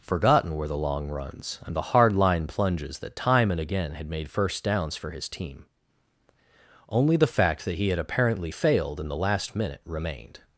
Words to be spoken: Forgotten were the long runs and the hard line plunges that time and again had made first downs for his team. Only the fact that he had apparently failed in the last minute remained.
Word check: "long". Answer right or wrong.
right